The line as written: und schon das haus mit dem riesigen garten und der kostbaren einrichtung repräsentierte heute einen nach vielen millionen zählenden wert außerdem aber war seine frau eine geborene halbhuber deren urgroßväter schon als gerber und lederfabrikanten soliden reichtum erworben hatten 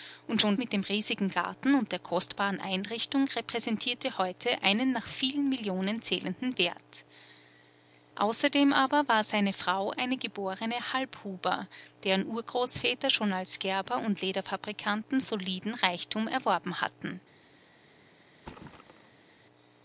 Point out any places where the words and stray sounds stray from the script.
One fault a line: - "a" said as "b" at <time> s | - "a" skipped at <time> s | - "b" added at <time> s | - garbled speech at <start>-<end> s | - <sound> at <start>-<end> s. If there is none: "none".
- "das haus" skipped at 0.5 s
- thud at 18.4-19.3 s